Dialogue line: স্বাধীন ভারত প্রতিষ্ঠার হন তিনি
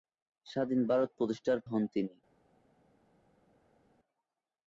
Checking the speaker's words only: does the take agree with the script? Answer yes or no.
yes